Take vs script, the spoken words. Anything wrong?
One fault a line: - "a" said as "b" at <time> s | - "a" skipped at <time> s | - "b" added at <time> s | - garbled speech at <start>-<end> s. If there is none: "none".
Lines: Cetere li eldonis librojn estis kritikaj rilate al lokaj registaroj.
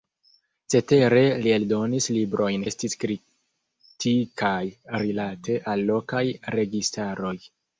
none